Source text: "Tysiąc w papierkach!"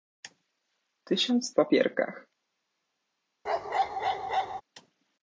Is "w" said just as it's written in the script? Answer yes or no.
yes